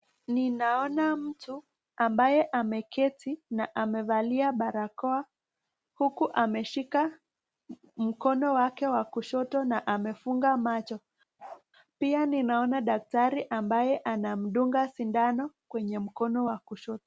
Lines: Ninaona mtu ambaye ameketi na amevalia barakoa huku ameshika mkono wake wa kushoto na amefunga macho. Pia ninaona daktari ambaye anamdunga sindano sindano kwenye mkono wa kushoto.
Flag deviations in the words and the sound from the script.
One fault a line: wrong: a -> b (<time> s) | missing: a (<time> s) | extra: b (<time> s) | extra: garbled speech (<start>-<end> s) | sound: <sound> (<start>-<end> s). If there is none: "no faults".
sound: bark (11.4-11.6 s)
missing: sindano (15.5 s)